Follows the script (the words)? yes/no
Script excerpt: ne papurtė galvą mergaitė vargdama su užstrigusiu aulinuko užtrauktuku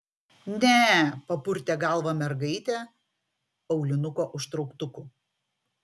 no